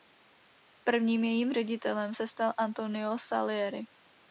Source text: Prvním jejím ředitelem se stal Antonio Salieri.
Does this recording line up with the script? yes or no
yes